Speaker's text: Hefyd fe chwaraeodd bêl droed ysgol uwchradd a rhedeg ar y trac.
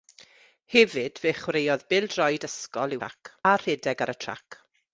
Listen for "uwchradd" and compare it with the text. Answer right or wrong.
wrong